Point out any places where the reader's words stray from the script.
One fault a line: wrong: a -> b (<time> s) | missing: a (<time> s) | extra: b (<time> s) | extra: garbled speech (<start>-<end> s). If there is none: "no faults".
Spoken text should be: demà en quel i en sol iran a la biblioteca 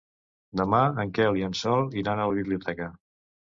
no faults